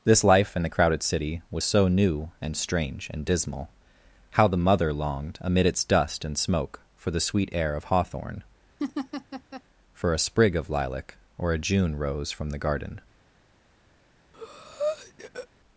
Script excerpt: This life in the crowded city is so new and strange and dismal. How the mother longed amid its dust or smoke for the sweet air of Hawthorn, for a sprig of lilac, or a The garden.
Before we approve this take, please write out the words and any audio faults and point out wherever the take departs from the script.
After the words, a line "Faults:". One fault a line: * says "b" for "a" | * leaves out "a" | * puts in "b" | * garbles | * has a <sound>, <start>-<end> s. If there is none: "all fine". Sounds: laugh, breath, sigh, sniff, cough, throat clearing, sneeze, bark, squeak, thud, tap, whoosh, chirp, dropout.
This life in the crowded city was so new and strange and dismal. How the mother longed amid its dust and smoke for the sweet air of Hawthorn, for a sprig of lilac, or a June rose from the garden.
Faults:
* says "was" for "is"
* says "and" for "or"
* has a laugh, 8.8-9.6 s
* puts in "June rose from"
* has a breath, 14.3-15.5 s